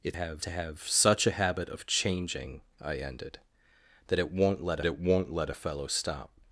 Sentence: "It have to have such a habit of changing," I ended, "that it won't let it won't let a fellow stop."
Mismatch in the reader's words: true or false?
false